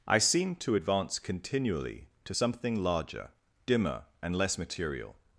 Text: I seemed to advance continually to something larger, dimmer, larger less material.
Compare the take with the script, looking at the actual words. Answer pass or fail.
fail